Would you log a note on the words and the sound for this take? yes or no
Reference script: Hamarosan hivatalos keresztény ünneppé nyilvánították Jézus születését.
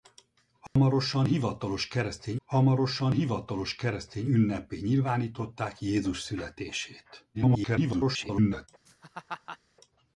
yes